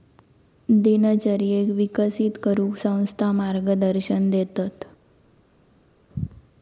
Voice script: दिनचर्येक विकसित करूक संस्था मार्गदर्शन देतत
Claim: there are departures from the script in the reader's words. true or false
false